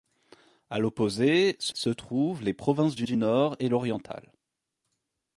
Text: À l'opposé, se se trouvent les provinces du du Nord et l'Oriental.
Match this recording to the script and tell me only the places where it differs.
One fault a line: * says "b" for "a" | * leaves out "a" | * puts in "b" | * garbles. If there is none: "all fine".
all fine